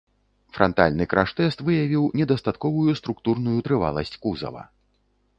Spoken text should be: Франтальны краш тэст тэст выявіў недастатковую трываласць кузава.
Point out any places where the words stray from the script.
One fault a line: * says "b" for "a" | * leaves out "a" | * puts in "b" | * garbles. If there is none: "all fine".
* leaves out "тэст"
* puts in "структурную"